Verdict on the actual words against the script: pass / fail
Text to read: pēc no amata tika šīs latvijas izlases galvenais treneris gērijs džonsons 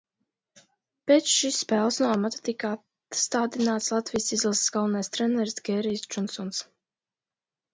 fail